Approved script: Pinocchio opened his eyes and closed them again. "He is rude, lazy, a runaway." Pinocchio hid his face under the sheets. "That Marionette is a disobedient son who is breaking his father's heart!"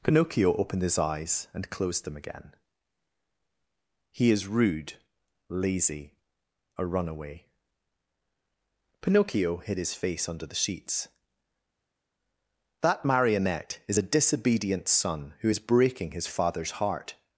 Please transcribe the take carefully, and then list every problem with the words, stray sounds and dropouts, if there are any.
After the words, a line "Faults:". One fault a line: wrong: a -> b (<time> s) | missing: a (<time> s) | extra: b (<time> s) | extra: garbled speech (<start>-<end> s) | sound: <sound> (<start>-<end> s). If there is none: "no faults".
Pinocchio opened his eyes and closed them again. "He is rude, lazy, a runaway." Pinocchio hid his face under the sheets. "That Marionette is a disobedient son who is breaking his father's heart!"
Faults:
no faults